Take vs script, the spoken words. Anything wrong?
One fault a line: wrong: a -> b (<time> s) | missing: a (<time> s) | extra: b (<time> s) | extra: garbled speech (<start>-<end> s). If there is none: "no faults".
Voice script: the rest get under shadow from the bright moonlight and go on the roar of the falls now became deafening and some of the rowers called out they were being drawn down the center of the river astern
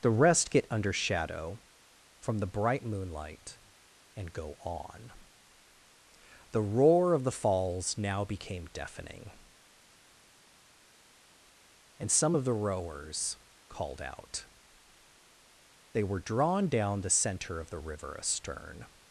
missing: being (16.2 s)